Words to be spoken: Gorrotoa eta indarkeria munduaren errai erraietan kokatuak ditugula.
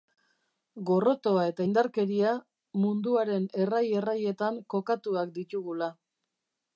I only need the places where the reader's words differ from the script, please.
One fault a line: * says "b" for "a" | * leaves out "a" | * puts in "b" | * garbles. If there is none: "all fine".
all fine